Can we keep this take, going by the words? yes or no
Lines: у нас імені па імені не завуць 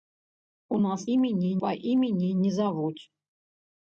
yes